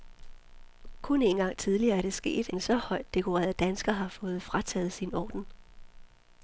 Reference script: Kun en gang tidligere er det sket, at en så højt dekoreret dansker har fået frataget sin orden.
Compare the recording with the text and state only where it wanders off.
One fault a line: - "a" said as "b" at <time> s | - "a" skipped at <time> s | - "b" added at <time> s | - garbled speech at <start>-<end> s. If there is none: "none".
- "at" skipped at 2.5 s